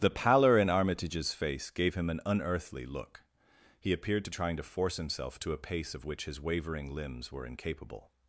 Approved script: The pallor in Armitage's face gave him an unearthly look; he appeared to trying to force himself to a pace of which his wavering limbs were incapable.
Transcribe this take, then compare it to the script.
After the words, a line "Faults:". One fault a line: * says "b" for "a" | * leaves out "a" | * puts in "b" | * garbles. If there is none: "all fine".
The pallor in Armitage's face gave him an unearthly look; he appeared to trying to force himself to a pace of which his wavering limbs were incapable.
Faults:
all fine